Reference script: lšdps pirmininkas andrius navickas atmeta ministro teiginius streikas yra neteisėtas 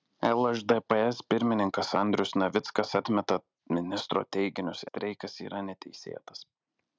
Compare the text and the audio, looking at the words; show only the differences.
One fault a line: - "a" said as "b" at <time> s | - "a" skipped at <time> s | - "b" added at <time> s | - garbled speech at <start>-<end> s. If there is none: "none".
none